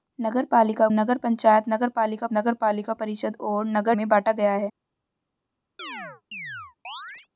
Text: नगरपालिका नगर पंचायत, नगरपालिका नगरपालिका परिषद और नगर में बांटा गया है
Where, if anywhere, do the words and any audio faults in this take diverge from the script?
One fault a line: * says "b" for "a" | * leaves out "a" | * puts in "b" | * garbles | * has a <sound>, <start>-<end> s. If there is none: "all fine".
* has a chirp, 5.8-7.3 s